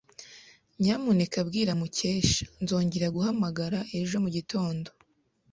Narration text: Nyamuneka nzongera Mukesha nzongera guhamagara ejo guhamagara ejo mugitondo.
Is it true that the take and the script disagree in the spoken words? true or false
true